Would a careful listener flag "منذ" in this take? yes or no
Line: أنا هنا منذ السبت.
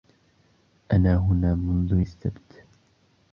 no